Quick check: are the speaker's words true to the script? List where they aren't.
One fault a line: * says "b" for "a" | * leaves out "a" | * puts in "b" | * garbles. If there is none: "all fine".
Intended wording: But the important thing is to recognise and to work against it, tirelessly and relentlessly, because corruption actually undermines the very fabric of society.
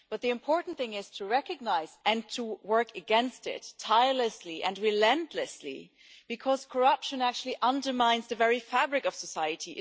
all fine